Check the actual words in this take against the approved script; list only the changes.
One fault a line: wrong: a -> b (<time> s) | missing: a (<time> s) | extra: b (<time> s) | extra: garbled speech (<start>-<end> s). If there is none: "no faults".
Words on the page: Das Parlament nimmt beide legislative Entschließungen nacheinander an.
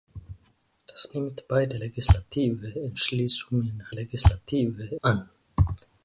missing: Parlament (1.1 s)
wrong: nacheinander -> legislative (3.9 s)